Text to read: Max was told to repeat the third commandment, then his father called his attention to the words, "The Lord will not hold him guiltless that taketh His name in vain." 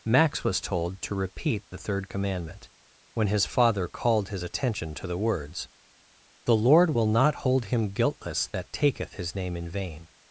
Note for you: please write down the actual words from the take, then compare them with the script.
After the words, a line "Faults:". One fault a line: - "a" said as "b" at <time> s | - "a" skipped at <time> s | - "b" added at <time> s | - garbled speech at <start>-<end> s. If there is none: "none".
Max was told to repeat the third commandment, when his father called his attention to the words, "The Lord will not hold him guiltless that taketh His name in vain."
Faults:
- "then" said as "when" at 3.1 s